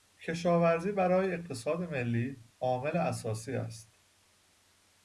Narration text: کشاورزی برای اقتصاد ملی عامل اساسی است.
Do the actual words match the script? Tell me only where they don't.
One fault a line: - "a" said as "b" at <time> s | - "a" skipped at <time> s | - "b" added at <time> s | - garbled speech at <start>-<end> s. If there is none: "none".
none